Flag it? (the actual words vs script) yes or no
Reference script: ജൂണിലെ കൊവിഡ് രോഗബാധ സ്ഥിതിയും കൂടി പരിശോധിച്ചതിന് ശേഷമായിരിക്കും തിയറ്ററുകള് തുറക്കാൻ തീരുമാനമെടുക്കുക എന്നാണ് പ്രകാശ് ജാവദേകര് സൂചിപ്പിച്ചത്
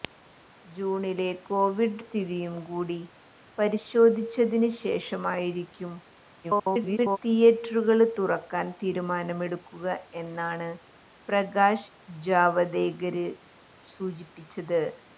yes